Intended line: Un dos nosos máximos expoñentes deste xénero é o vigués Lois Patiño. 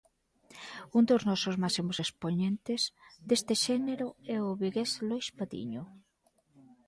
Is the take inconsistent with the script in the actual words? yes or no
no